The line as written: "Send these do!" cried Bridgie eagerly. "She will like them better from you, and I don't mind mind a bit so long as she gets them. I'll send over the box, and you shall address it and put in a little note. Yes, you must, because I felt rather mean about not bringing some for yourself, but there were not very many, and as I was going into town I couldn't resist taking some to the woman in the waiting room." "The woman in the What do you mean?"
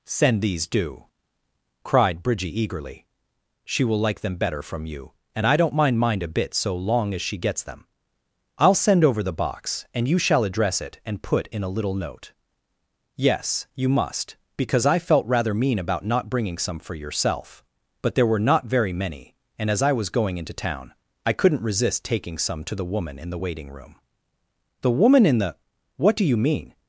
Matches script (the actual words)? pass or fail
pass